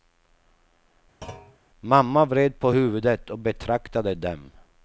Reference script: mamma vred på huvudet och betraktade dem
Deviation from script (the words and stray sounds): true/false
true